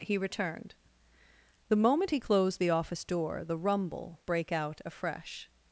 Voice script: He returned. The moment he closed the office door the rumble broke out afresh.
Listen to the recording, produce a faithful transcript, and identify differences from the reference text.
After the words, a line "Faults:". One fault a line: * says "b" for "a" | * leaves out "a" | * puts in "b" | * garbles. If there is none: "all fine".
He returned. The moment he closed the office door the rumble brake out afresh.
Faults:
* says "brake" for "broke"